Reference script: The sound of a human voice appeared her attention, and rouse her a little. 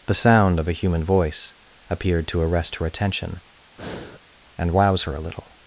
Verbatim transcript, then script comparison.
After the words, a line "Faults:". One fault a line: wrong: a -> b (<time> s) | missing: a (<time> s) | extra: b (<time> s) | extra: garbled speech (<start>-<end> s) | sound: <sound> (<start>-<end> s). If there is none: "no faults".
The sound of a human voice appeared to arrest her attention, and rouse her a little.
Faults:
extra: to arrest (2.3 s)
sound: breath (3.8-4.2 s)